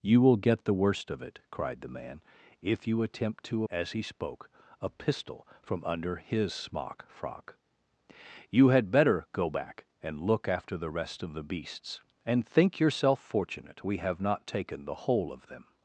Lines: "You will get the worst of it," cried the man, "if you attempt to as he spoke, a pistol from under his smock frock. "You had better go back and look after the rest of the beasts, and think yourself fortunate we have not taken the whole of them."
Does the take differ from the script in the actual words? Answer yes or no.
no